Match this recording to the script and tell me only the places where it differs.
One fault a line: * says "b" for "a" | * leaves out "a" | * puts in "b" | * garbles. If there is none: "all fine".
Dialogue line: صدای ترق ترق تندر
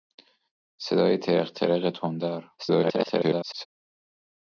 * garbles